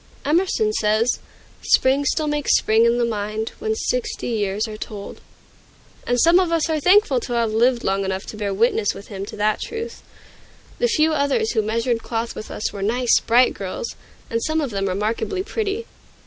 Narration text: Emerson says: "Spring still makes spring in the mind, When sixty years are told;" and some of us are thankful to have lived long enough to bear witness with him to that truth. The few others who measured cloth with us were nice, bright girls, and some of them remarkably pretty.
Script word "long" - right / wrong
right